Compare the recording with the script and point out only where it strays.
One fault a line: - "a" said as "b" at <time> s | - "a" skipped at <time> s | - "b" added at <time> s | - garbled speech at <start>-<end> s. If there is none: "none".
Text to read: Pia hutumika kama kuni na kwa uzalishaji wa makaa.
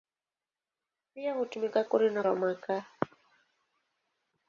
- "kama" skipped at 1.8 s
- "kwa uzalishaji" skipped at 2.2 s